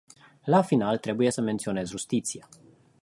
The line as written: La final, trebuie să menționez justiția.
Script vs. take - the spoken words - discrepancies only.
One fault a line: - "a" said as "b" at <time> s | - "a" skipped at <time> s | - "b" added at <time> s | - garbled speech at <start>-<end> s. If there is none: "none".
none